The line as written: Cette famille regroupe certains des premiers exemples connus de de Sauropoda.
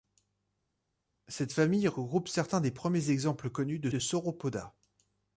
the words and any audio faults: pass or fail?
pass